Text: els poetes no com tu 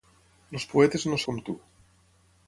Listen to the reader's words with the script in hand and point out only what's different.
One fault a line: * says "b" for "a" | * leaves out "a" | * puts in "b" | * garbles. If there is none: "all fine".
all fine